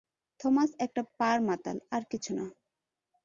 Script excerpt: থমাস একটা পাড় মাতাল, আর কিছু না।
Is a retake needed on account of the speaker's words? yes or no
no